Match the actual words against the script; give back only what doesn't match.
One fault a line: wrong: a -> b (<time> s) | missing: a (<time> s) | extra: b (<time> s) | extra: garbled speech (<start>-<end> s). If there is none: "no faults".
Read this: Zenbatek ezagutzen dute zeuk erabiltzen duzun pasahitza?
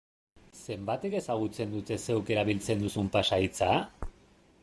no faults